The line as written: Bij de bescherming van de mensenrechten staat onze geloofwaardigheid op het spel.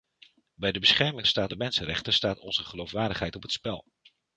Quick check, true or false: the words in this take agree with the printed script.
false